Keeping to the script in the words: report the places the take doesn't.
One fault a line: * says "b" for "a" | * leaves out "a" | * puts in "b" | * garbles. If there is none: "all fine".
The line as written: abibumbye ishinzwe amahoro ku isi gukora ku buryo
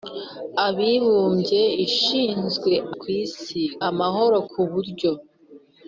* leaves out "amahoro"
* says "amahoro" for "gukora"